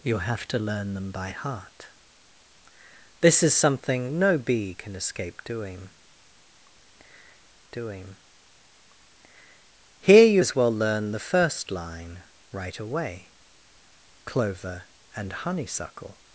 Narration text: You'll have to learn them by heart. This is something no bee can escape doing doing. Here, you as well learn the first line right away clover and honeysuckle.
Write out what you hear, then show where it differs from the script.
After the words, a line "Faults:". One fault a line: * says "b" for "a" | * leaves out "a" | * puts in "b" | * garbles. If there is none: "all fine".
You'll have to learn them by heart. This is something no bee can escape doing doing. Here, you as well learn the first line right away clover and honeysuckle.
Faults:
all fine